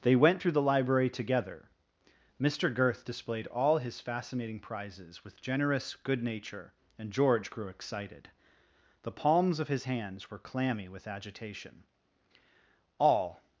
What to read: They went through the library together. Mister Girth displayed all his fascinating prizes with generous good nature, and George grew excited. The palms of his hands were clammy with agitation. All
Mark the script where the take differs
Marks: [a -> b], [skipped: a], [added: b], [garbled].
They went through the library together. Mister Girth displayed all his fascinating prizes with generous good nature, and George grew excited. The palms of his hands were clammy with agitation. All